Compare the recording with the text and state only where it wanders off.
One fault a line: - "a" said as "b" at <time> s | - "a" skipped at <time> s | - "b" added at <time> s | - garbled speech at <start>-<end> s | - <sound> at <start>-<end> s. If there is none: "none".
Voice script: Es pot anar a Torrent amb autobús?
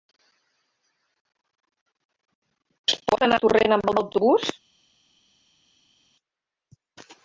- "amb" added at 3.9 s